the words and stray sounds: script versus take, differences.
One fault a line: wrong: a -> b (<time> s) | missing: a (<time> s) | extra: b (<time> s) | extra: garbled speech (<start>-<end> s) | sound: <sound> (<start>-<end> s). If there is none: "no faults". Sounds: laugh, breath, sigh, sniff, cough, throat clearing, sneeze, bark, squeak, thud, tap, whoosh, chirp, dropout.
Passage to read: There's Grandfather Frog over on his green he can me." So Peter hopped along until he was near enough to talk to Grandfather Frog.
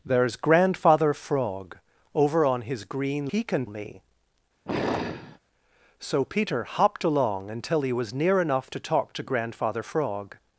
sound: sigh (4.7-5.4 s)